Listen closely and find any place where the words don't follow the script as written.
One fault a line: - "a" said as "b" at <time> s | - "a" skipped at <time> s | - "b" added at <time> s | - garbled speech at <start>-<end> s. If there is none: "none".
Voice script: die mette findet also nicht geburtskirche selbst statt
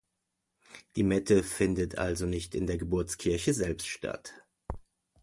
- "in der" added at 2.5 s